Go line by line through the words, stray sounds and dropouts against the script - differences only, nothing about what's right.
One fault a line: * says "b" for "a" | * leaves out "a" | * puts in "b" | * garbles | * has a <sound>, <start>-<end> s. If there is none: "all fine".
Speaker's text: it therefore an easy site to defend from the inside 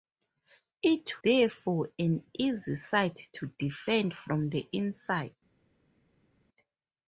all fine